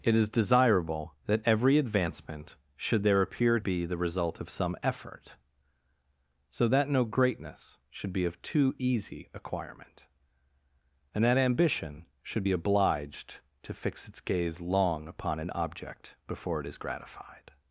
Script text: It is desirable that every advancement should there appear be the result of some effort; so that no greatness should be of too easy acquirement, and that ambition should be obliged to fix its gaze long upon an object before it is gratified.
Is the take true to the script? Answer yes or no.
yes